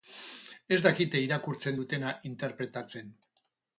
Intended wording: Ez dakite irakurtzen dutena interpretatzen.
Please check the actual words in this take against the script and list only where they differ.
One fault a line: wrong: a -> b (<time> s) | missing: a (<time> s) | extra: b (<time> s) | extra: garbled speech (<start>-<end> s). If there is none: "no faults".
no faults